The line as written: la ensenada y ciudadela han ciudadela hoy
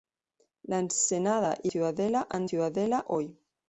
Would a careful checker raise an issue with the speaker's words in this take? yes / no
no